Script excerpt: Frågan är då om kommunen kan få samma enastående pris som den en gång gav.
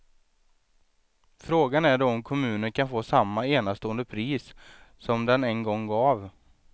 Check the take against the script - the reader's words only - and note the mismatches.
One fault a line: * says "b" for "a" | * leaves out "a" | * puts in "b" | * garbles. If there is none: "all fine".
all fine